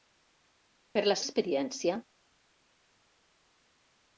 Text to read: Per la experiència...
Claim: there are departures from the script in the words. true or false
false